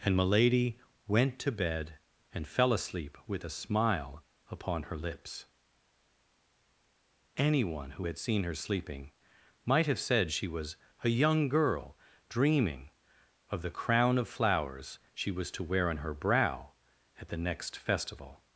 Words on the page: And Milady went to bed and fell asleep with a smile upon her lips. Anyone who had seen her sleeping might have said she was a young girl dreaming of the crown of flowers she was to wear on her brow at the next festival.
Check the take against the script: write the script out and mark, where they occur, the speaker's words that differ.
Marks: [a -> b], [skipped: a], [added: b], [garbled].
And Milady went to bed and fell asleep with a smile upon her lips. Anyone who had seen her sleeping might have said she was a young girl dreaming of the crown of flowers she was to wear on her brow at the next festival.